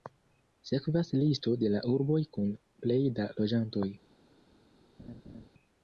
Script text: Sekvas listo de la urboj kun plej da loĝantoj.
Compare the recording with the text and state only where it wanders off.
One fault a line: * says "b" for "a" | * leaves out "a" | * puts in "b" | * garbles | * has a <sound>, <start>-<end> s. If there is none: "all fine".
* has a laugh, 5.0-5.5 s